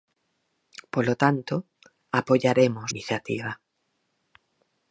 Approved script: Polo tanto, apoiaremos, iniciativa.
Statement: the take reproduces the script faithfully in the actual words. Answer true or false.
true